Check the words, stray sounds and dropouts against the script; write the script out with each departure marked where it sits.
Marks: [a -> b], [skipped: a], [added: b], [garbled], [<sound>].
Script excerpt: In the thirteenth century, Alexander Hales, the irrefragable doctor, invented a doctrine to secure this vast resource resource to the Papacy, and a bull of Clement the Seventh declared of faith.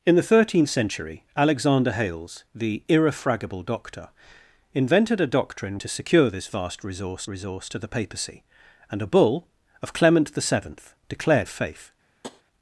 In the thirteenth century, Alexander Hales, the irrefragable doctor, invented a doctrine to secure this vast resource resource to the Papacy, and a bull of Clement the Seventh declared of faith. [tap]